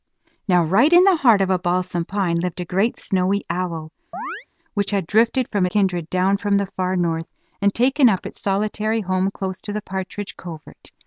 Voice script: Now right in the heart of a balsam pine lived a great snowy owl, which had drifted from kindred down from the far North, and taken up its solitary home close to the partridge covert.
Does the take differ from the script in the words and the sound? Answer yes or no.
yes